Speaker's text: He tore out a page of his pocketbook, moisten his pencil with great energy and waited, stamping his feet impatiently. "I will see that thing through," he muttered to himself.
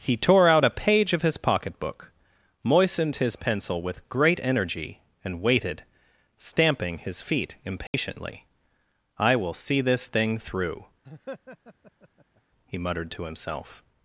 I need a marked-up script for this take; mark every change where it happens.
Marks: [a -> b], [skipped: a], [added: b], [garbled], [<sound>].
He tore out a page of his pocketbook, [moisten -> moistened] his pencil with great energy and waited, stamping his feet impatiently. [dropout] "I will see [that -> this] thing through," [laugh] he muttered to himself.